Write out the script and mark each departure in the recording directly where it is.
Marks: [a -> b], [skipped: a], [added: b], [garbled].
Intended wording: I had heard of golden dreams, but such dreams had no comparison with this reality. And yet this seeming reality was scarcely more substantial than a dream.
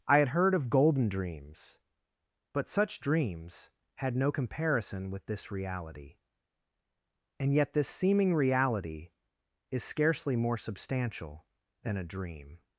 I had heard of golden dreams, but such dreams had no comparison with this reality. And yet this seeming reality [was -> is] scarcely more substantial than a dream.